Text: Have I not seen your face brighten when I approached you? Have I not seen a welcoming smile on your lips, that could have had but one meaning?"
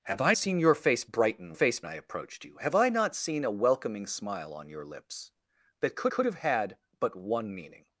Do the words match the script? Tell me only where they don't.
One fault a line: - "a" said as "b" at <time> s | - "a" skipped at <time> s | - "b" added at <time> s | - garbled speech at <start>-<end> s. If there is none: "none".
- "not" skipped at 0.3 s
- "when" said as "face" at 1.5 s
- "could" added at 6.1 s